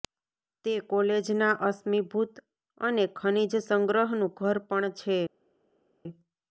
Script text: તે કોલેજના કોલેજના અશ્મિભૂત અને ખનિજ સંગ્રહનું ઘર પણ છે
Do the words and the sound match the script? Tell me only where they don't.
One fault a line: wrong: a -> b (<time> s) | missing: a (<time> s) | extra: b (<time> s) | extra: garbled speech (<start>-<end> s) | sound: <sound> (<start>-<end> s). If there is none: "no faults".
missing: કોલેજના (1.5 s)